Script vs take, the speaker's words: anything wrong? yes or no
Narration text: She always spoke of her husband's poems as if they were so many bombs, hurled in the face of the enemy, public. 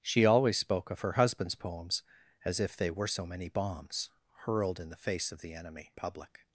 no